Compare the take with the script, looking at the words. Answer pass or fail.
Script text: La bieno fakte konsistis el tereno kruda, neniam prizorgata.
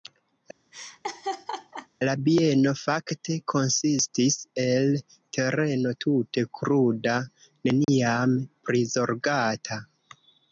fail